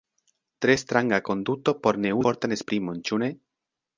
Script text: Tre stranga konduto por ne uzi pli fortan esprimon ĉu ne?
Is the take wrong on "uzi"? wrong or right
wrong